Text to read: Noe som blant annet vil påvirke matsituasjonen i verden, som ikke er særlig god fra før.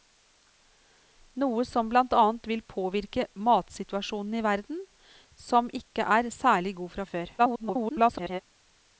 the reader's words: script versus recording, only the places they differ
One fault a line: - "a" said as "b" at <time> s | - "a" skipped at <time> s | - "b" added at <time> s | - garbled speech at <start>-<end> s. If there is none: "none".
- garbled speech at 7.4-8.4 s